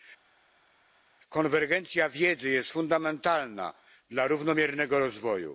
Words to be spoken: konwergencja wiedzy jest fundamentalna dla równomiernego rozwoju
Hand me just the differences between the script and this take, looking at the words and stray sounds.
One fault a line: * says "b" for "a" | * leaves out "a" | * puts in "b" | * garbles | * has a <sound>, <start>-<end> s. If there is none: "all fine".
all fine